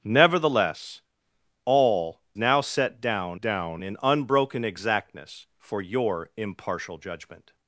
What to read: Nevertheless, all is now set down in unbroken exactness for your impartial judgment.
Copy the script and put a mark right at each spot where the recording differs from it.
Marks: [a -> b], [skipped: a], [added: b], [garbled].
Nevertheless, all [skipped: is] now set down [added: down] in unbroken exactness for your impartial judgment.